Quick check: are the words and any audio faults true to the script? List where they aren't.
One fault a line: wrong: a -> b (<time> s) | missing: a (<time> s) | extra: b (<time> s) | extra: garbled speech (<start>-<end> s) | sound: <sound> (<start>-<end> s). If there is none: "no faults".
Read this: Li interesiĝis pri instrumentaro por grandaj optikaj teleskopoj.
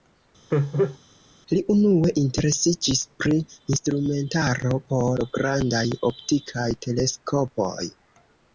sound: laugh (0.5-1.0 s)
extra: unue (1.7 s)